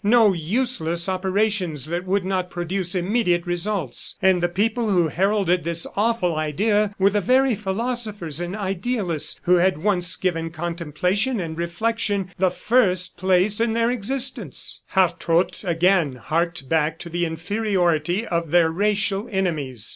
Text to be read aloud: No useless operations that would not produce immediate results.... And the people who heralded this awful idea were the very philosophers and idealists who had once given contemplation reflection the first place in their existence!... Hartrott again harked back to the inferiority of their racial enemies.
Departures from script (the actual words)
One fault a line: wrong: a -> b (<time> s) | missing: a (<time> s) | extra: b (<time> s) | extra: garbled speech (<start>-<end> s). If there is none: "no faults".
extra: and (11.4 s)